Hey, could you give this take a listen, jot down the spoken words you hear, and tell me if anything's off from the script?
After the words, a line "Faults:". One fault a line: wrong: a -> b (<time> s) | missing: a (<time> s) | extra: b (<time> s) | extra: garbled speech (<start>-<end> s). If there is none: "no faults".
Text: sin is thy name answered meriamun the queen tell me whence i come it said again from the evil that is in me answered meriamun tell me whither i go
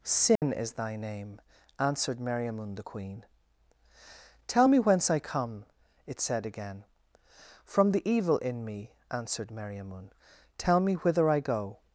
sin is thy name answered meriamun the queen tell me whence i come it said again from the evil in me answered meriamun tell me whither i go
Faults:
missing: that is (8.4 s)